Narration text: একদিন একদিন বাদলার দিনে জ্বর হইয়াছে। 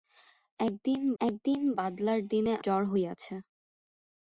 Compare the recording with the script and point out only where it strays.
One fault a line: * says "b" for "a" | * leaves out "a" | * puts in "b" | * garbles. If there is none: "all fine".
all fine